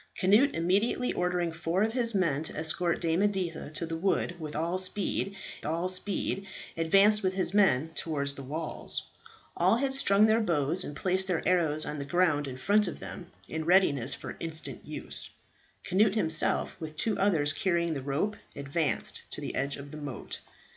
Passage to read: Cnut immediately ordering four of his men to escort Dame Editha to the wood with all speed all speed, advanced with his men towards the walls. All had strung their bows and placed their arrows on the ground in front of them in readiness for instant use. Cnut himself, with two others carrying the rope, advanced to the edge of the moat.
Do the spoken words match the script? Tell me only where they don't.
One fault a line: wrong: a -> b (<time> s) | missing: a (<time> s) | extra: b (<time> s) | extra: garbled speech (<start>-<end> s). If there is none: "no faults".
no faults